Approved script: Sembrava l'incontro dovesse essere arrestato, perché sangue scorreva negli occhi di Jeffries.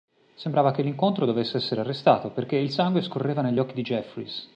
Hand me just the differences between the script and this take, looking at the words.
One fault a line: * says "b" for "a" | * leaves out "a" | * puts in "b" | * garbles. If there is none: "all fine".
* puts in "che"
* puts in "il"